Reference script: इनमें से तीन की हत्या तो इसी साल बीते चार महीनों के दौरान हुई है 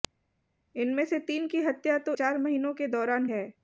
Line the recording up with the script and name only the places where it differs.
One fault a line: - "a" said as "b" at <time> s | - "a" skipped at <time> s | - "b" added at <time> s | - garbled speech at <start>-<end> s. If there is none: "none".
- "इसी साल बीते" skipped at 2.2 s
- "हुई" skipped at 3.3 s